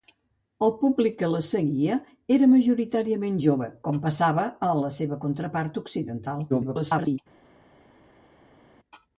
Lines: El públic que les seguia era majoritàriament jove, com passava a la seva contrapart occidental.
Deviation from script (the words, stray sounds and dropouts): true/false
true